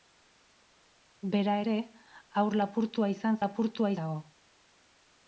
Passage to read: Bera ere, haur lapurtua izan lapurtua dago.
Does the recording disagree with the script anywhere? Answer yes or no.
no